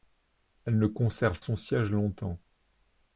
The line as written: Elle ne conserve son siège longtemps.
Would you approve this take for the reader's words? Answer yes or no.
yes